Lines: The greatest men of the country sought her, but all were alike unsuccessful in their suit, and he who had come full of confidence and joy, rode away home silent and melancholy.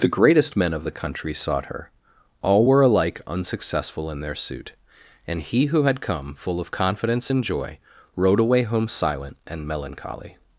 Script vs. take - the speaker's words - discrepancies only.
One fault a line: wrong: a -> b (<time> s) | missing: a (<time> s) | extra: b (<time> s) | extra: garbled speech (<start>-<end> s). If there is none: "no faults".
missing: but (1.9 s)